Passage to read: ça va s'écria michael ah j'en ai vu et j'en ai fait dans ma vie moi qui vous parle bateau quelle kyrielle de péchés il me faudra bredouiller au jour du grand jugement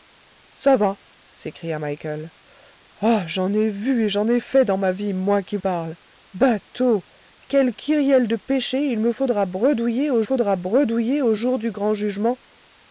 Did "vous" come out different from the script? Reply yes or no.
yes